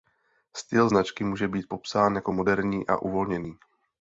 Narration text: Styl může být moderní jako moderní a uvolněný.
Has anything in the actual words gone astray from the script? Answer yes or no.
yes